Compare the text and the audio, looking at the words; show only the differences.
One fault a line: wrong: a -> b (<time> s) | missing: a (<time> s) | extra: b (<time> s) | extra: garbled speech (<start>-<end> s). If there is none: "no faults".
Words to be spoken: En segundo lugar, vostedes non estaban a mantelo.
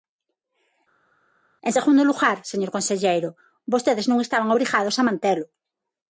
extra: señor conselleiro (2.5 s)
extra: obrigados (4.5 s)